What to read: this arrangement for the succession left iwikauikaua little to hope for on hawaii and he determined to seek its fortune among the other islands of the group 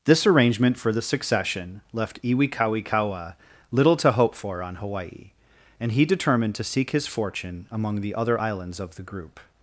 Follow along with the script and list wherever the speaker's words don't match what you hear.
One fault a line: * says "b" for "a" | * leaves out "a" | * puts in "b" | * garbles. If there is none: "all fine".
* says "his" for "its"